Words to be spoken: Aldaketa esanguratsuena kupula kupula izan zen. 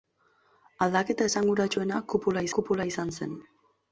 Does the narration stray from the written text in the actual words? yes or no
no